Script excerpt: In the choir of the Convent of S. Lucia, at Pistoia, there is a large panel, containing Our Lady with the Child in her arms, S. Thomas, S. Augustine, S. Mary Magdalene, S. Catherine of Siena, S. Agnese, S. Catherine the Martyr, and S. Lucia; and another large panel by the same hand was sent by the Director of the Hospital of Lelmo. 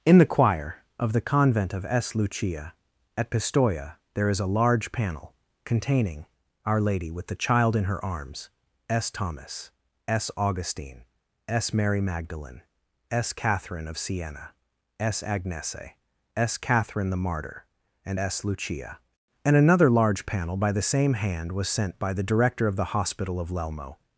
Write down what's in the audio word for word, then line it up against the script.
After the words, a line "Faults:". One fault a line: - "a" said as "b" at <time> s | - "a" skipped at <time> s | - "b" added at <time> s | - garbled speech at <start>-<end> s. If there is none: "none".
In the choir of the Convent of S. Lucia, at Pistoia, there is a large panel, containing Our Lady with the Child in her arms, S. Thomas, S. Augustine, S. Mary Magdalene, S. Catherine of Siena, S. Agnese, S. Catherine the Martyr, and S. Lucia; and another large panel by the same hand was sent by the Director of the Hospital of Lelmo.
Faults:
none